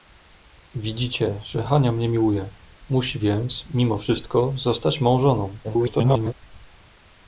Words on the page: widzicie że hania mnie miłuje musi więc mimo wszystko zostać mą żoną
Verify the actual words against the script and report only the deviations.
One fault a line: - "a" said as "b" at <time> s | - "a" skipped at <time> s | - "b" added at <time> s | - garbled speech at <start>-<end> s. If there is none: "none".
- garbled speech at 5.6-6.3 s